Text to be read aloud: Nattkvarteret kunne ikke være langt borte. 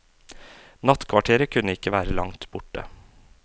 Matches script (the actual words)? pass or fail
pass